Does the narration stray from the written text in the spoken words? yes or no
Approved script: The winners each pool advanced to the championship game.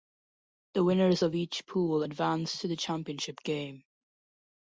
yes